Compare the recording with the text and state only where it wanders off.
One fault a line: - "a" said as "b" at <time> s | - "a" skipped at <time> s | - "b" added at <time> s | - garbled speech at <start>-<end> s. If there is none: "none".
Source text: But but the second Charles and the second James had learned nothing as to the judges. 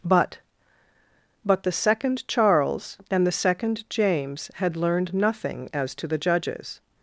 none